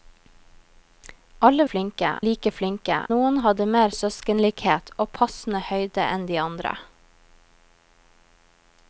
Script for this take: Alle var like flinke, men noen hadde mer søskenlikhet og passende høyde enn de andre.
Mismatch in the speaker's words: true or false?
true